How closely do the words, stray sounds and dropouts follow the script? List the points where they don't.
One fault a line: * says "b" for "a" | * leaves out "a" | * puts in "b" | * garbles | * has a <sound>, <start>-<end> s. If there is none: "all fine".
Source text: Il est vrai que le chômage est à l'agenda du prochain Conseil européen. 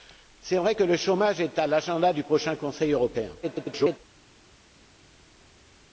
* garbles